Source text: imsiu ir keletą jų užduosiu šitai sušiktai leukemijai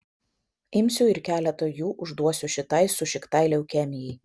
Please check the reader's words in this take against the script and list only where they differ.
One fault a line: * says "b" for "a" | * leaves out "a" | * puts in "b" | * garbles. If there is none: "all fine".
all fine